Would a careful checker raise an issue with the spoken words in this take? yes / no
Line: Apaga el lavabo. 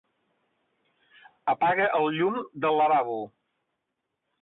yes